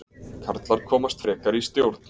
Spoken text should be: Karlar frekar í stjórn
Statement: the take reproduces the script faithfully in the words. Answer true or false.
false